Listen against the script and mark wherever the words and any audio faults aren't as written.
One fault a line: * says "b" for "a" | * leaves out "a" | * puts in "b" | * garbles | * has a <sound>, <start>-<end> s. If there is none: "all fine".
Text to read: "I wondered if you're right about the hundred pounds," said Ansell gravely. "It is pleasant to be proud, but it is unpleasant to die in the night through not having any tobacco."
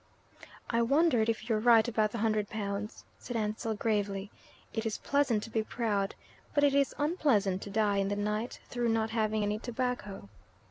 all fine